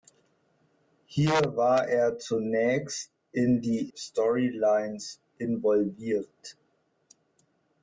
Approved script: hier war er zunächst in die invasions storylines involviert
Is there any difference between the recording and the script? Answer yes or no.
yes